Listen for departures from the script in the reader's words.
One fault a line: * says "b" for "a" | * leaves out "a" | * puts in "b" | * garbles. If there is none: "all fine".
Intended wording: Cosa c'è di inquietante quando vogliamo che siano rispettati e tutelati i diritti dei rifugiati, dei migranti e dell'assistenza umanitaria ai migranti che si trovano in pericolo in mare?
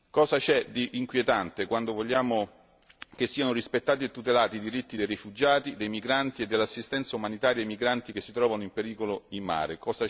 all fine